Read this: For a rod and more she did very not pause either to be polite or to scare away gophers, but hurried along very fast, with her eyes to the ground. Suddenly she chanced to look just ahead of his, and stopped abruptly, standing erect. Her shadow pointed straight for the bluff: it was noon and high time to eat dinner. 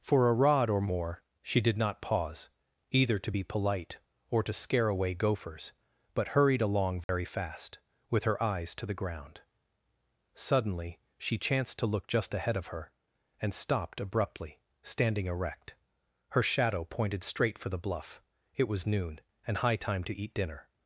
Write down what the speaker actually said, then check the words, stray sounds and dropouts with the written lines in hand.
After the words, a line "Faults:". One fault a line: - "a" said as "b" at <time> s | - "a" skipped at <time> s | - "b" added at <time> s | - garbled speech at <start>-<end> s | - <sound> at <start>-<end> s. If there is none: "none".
For a rod or more she did not pause either to be polite or to scare away gophers, but hurried along very fast, with her eyes to the ground. Suddenly she chanced to look just ahead of her, and stopped abruptly, standing erect. Her shadow pointed straight for the bluff: it was noon and high time to eat dinner.
Faults:
- "and" said as "or" at 0.7 s
- "very" skipped at 1.8 s
- dropout at 7.0-7.1 s
- "his" said as "her" at 12.7 s